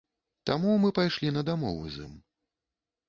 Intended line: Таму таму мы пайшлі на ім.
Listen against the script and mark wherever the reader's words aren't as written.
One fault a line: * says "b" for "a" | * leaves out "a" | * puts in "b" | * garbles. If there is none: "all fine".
* leaves out "таму"
* puts in "дамову з"